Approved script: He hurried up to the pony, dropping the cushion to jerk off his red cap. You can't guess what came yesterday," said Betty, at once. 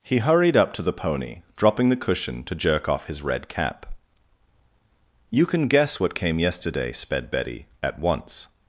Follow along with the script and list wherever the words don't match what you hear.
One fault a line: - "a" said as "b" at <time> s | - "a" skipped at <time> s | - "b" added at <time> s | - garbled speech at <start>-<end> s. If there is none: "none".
- "can't" said as "can" at 5.5 s
- "said" said as "sped" at 6.9 s